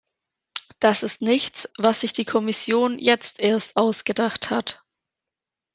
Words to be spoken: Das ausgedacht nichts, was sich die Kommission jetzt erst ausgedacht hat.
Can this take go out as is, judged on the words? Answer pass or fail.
fail